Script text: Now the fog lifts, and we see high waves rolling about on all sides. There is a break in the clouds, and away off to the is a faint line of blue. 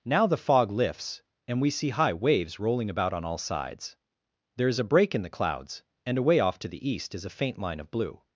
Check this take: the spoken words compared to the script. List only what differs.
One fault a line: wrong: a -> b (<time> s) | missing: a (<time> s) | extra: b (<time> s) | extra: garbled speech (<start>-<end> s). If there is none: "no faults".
extra: east (6.9 s)